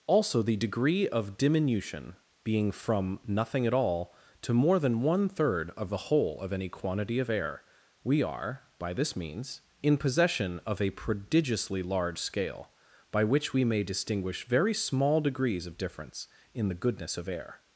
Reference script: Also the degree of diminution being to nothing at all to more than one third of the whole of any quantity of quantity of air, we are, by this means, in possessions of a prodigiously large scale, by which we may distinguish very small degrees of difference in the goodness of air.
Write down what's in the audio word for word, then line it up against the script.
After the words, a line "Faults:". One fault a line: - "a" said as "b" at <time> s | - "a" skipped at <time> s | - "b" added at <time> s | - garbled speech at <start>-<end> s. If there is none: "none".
Also the degree of diminution being from nothing at all to more than one third of the whole of any quantity of air, we are, by this means, in possession of a prodigiously large scale, by which we may distinguish very small degrees of difference in the goodness of air.
Faults:
- "to" said as "from" at 2.7 s
- "quantity of" skipped at 7.3 s
- "possessions" said as "possession" at 10.0 s